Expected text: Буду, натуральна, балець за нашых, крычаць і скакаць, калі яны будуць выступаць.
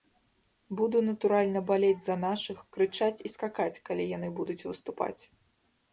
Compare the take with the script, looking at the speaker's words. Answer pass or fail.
pass